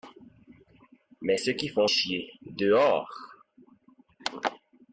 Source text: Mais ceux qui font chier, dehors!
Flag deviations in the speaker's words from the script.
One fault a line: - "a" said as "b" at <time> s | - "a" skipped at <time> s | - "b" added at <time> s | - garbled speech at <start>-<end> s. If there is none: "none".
none